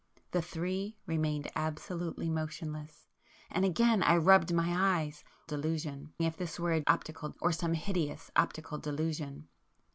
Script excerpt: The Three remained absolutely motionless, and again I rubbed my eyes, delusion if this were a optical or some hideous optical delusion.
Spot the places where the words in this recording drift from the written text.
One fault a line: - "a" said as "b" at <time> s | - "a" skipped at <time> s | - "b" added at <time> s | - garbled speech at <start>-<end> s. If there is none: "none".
none